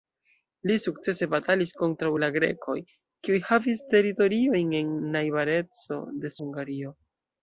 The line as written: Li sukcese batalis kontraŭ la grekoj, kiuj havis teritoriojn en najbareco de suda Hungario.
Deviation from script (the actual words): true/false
true